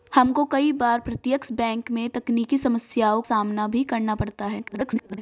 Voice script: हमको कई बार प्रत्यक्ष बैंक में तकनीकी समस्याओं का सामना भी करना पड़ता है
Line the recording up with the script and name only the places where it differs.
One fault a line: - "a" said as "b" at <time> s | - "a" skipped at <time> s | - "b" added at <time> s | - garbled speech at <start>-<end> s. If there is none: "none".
- "का" skipped at 3.2 s
- garbled speech at 4.6-5.2 s